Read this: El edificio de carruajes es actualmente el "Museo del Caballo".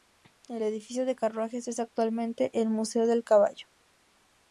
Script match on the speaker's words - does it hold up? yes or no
yes